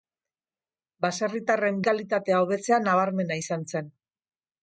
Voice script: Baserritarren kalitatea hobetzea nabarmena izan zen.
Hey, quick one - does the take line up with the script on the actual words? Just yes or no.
yes